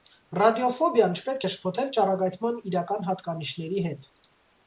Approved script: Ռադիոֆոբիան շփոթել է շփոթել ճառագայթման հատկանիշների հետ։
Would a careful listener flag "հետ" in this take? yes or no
no